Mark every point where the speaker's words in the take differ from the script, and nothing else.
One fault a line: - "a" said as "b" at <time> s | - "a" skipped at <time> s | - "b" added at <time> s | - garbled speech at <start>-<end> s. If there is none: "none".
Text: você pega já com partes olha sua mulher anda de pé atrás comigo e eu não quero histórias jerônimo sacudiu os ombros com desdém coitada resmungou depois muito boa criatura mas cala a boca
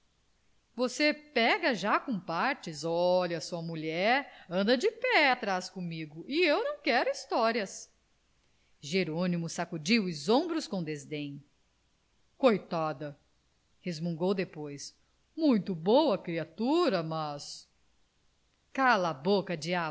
none